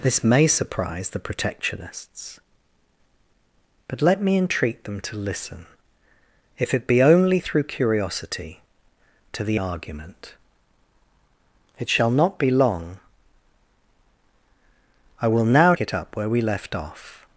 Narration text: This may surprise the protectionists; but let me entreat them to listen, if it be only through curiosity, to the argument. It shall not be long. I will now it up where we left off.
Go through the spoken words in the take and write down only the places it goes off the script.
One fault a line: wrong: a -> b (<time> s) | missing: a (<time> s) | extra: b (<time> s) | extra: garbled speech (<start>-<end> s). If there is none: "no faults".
no faults